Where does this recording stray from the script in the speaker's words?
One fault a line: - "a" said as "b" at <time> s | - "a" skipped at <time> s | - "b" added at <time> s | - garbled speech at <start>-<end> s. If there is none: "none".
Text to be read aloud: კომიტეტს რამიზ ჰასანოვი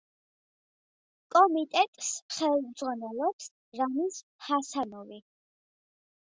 - "ხელმძღვანელობს" added at 2.4 s